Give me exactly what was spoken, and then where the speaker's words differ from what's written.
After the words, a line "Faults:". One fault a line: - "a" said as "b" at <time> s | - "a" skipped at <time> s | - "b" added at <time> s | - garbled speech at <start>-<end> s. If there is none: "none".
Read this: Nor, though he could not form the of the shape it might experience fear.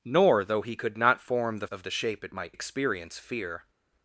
Nor, though he could not form the of the shape it might experience fear.
Faults:
none